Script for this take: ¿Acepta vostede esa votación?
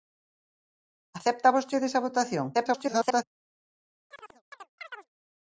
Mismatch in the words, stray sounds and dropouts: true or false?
true